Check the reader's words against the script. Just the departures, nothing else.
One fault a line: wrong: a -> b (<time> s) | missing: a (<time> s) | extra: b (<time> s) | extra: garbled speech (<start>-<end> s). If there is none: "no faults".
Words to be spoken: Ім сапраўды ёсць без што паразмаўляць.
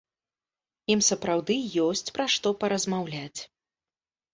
wrong: без -> пра (2.2 s)